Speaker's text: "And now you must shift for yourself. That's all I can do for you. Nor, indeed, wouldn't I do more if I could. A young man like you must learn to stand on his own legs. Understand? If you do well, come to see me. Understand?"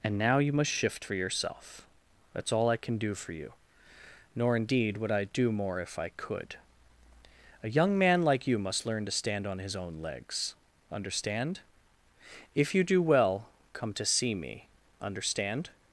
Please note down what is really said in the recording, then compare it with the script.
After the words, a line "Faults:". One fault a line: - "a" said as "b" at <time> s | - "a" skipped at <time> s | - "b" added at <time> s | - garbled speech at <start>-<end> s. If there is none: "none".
"And now you must shift for yourself. That's all I can do for you. Nor, indeed, would I do more if I could. A young man like you must learn to stand on his own legs. Understand? If you do well, come to see me. Understand?"
Faults:
- "wouldn't" said as "would" at 5.0 s